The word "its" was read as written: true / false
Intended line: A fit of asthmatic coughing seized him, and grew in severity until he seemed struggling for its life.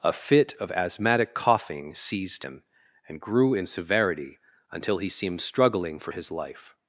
false